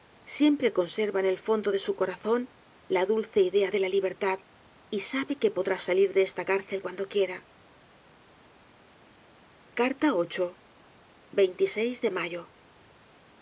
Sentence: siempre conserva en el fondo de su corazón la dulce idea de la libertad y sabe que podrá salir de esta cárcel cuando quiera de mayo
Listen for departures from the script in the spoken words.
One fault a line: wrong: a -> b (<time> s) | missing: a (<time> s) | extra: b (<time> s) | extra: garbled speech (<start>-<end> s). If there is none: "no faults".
no faults